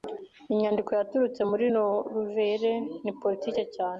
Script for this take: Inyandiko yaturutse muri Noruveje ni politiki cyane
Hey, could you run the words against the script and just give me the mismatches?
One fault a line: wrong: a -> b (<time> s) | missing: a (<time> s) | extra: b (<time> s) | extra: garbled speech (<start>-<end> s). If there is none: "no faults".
no faults